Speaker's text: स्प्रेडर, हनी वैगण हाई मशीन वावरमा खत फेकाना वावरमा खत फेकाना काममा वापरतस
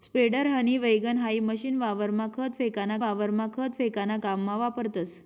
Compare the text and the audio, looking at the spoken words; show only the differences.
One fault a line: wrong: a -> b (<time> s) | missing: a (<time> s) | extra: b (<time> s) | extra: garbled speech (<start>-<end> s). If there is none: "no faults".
no faults